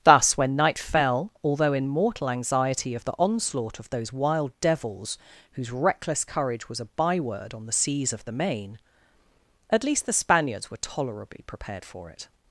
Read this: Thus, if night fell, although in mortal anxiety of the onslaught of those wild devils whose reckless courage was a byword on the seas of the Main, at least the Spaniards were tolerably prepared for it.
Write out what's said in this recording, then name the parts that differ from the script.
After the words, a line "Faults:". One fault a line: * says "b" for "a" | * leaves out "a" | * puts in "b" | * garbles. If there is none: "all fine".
Thus, when night fell, although in mortal anxiety of the onslaught of those wild devils whose reckless courage was a byword on the seas of the Main, at least the Spaniards were tolerably prepared for it.
Faults:
* says "when" for "if"